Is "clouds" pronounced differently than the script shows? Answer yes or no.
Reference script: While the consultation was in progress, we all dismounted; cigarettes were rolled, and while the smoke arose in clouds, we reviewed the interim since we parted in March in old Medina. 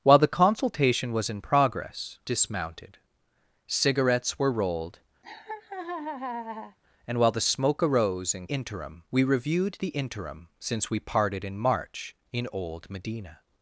yes